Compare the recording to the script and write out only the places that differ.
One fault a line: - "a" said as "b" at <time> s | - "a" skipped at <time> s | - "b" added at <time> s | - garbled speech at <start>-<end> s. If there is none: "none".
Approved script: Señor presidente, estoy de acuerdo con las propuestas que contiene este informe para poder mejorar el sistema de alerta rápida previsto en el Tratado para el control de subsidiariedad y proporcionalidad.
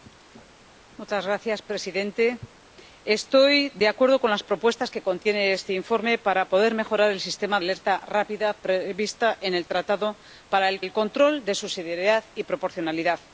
- "de" skipped at 7.6 s
- "el" added at 10.8 s